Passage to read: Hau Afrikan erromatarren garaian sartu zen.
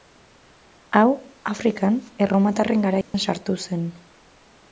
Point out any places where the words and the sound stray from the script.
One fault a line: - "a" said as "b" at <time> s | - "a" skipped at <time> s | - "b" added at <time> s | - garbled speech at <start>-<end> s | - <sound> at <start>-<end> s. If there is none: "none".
- dropout at 3.0-3.1 s